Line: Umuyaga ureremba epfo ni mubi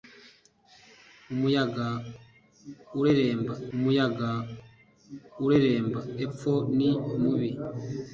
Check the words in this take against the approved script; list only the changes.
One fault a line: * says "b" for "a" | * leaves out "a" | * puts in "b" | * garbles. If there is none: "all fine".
* puts in "umuyaga ureremba"